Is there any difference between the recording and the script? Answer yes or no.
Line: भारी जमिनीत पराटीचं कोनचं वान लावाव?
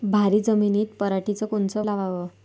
yes